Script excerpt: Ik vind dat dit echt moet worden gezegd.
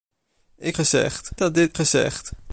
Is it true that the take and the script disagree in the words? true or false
true